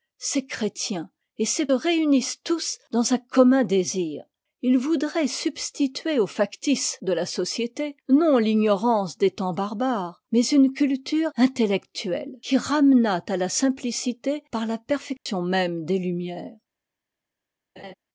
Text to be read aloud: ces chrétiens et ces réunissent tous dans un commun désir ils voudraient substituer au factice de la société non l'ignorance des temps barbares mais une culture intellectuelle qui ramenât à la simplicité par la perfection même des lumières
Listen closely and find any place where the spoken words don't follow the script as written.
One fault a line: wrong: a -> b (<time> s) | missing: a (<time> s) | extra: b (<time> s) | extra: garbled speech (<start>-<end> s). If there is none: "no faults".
no faults